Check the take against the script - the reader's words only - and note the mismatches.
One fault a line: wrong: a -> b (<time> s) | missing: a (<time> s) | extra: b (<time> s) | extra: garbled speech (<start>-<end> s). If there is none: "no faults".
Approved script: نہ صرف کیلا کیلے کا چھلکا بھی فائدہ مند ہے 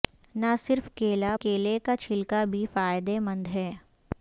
no faults